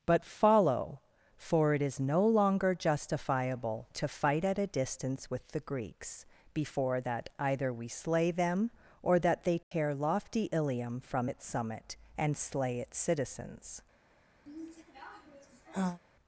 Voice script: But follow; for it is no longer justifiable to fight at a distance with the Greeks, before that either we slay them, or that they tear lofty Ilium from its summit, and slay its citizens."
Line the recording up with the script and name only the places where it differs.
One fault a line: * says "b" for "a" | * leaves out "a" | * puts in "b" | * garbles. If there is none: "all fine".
all fine